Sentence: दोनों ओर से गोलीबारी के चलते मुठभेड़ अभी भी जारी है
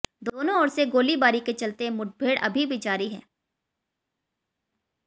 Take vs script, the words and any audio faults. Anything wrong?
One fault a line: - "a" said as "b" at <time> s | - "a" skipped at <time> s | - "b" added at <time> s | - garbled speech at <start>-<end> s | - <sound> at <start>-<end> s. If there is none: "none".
none